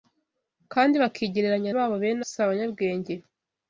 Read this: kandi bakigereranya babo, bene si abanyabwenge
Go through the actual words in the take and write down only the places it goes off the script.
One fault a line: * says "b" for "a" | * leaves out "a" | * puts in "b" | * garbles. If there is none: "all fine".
all fine